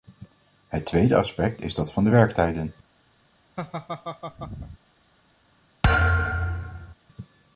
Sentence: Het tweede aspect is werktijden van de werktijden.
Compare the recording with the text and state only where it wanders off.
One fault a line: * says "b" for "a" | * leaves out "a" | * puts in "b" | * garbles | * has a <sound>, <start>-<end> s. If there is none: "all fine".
* says "dat" for "werktijden"
* has a laugh, 3.6-4.8 s
* has a thud, 5.8-6.9 s